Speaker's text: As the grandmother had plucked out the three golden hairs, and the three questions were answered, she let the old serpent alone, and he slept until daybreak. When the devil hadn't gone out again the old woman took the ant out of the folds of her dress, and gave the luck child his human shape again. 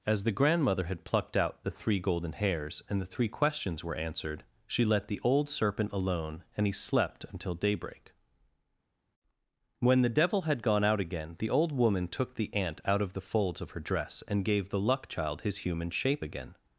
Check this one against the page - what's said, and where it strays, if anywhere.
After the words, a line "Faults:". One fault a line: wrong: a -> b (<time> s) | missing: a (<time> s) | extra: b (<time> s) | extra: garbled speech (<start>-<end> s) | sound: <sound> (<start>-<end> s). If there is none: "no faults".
As the grandmother had plucked out the three golden hairs, and the three questions were answered, she let the old serpent alone, and he slept until daybreak. When the devil had gone out again the old woman took the ant out of the folds of her dress, and gave the luck child his human shape again.
Faults:
wrong: hadn't -> had (10.4 s)